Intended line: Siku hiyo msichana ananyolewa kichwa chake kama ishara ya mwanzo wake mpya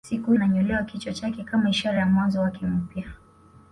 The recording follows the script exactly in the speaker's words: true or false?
false